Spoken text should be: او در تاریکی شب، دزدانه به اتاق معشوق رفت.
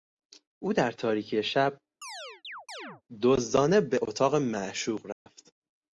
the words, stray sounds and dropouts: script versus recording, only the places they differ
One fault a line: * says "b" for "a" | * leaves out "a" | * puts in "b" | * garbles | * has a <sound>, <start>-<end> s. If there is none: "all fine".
* has a chirp, 2.0-3.0 s
* has a dropout, 5.1-5.3 s